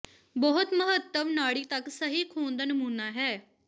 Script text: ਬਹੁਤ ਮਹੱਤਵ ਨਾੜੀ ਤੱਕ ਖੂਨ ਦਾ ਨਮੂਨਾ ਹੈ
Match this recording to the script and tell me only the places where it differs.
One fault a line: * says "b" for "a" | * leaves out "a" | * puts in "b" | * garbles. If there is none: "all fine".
* puts in "ਸਹੀ"